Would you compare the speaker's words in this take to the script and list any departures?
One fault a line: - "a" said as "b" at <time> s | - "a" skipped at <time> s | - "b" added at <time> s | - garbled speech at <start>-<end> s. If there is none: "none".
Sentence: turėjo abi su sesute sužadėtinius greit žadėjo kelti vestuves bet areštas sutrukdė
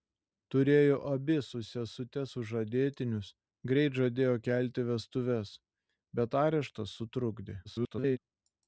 - garbled speech at 7.6-8.2 s